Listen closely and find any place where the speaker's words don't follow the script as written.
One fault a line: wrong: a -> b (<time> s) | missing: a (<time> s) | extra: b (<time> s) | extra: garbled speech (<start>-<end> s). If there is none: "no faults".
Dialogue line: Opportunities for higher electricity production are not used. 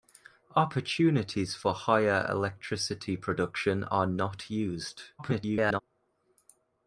extra: garbled speech (5.2-5.8 s)